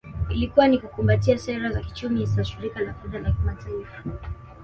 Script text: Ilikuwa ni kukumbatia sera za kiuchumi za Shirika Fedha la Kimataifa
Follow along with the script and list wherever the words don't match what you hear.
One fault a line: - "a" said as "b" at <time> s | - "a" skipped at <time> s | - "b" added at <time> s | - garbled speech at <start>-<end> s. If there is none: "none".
- "la" added at 2.8 s